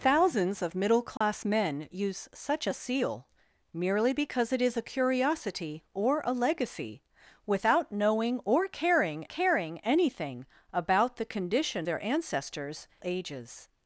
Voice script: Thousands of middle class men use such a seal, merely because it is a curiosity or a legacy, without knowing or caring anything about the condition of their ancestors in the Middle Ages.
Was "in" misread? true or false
true